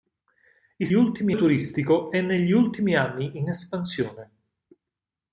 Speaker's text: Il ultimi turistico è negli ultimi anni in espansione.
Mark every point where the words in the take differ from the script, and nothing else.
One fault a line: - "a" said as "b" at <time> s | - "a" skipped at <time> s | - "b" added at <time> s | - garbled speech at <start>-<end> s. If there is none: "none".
none